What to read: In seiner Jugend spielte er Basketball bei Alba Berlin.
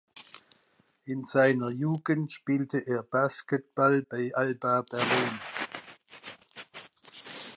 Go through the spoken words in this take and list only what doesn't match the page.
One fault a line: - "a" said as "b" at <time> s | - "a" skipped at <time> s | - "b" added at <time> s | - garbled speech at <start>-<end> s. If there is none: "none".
none